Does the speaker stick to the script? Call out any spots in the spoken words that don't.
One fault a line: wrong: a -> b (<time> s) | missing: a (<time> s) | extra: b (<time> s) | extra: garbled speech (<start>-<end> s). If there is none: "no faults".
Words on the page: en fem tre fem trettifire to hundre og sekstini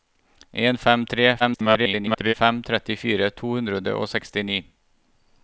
extra: garbled speech (1.4-2.3 s)